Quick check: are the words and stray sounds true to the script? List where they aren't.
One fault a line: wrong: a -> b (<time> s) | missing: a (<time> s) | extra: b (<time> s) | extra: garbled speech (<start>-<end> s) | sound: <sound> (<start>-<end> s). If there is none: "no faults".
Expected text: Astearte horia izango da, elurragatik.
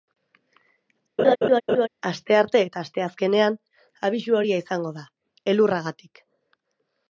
sound: laugh (1.2-1.9 s)
extra: eta asteazkenean abisu (2.7 s)